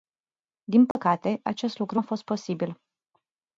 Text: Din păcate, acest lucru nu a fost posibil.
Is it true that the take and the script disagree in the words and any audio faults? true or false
true